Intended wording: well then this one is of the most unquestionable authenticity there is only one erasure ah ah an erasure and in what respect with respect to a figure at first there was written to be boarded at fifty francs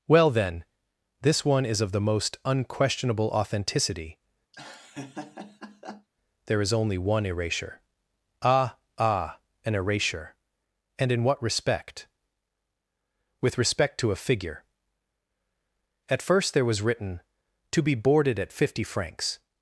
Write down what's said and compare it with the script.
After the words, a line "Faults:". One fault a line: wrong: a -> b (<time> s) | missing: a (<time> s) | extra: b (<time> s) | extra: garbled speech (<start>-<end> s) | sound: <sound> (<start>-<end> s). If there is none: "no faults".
well then this one is of the most unquestionable authenticity there is only one erasure ah ah an erasure and in what respect with respect to a figure at first there was written to be boarded at fifty francs
Faults:
sound: laugh (4.5-6.1 s)